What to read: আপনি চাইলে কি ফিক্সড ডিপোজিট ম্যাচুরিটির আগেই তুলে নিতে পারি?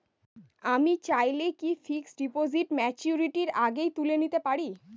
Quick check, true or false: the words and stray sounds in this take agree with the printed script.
false